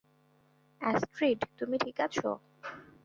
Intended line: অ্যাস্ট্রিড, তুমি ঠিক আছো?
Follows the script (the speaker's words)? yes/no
yes